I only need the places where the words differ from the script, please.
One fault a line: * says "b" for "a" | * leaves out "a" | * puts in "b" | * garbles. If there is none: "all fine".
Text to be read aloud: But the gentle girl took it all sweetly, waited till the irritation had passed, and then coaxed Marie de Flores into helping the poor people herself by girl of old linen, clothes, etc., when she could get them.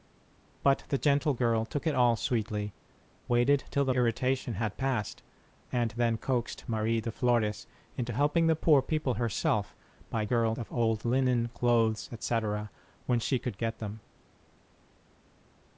all fine